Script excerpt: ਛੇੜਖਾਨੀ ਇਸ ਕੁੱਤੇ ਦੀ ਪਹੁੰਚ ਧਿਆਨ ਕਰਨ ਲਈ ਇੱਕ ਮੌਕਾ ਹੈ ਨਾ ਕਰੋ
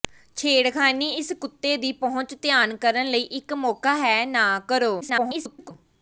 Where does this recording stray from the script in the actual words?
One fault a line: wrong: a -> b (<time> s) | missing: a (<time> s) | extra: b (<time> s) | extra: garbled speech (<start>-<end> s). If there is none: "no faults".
extra: garbled speech (5.0-5.7 s)